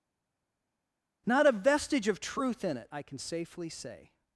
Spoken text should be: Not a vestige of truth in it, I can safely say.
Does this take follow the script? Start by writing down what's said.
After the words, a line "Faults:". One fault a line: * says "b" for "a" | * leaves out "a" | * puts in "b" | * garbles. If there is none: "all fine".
Not a vestige of truth in it, I can safely say.
Faults:
all fine